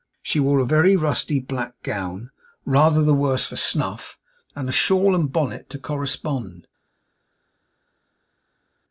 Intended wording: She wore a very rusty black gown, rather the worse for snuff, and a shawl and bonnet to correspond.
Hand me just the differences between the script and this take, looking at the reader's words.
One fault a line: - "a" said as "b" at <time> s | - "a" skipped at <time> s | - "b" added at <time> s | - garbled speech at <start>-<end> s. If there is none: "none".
none